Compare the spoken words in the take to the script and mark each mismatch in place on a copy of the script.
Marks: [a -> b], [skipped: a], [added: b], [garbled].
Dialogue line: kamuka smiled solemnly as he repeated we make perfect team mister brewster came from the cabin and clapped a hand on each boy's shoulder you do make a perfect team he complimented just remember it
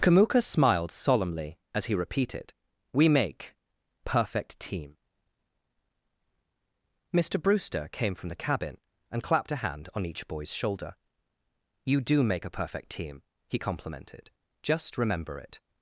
kamuka smiled solemnly as he repeated we make perfect team mister brewster came from the cabin and clapped a hand on each boy's shoulder you do make a perfect team he complimented just remember it